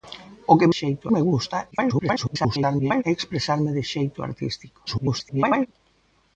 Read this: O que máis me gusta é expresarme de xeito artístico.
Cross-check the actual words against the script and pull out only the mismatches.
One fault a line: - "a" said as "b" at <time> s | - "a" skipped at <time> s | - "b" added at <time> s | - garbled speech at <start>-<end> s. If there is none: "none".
- "máis" said as "xeito" at 0.8 s
- garbled speech at 1.7-3.0 s
- garbled speech at 4.9-5.7 s